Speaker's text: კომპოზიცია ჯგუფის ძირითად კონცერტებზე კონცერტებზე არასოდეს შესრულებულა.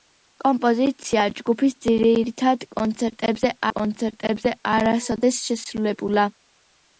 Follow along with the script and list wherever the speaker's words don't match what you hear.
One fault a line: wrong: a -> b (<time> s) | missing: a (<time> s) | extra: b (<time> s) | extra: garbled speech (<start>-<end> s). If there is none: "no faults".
no faults